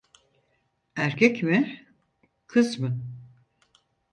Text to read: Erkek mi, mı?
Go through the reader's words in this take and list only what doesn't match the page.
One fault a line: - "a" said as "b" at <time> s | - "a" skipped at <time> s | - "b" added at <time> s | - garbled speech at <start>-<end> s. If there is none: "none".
- "kız" added at 2.5 s